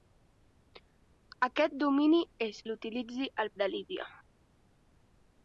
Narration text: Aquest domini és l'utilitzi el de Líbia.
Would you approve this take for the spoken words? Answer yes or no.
yes